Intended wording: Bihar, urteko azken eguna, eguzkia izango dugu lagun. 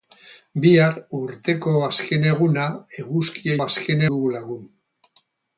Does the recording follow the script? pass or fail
fail